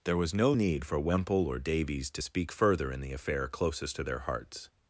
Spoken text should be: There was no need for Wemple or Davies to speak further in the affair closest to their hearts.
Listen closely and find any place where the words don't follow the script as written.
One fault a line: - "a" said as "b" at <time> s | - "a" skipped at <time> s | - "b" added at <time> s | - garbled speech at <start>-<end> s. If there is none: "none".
none